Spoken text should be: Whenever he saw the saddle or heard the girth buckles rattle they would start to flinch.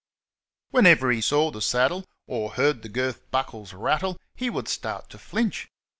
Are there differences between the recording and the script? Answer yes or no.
yes